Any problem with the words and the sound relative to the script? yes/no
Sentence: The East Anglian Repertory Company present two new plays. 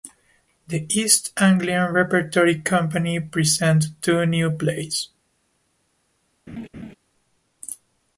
yes